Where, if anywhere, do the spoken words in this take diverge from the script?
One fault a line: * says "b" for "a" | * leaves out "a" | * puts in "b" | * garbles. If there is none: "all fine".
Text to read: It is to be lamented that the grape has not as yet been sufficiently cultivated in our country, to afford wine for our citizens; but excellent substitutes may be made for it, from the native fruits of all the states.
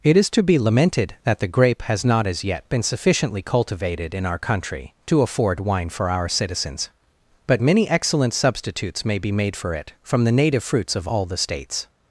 * puts in "many"